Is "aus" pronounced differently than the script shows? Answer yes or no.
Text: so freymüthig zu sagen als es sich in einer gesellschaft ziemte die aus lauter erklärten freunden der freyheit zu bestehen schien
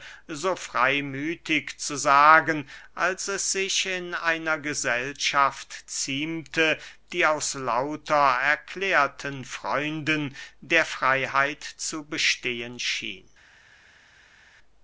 no